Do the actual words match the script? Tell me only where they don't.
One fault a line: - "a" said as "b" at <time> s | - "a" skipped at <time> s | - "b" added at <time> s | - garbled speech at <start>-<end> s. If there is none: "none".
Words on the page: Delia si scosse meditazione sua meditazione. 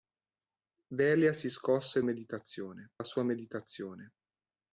none